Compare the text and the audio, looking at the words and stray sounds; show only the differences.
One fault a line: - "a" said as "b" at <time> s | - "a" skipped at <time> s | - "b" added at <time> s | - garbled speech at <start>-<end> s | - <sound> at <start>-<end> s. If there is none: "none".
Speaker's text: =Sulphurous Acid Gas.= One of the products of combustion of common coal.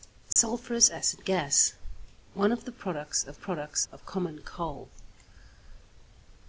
- dropout at 0.3-0.4 s
- "combustion" said as "products" at 3.3 s